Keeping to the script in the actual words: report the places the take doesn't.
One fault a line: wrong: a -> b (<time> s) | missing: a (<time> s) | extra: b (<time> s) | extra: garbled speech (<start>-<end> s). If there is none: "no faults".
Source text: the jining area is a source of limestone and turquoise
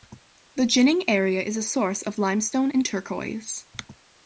no faults